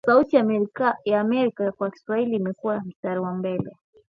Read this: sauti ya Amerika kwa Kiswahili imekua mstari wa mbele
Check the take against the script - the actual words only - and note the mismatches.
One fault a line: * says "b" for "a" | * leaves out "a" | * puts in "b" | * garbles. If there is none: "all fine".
all fine